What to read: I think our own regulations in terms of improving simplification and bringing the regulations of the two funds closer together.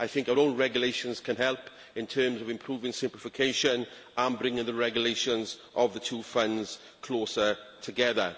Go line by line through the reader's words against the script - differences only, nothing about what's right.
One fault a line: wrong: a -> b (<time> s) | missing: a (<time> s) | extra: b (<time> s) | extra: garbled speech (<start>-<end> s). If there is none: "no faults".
extra: can help (1.2 s)